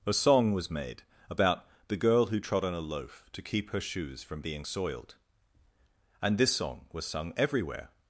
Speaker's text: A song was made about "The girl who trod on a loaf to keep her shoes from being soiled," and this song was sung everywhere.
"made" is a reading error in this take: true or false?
false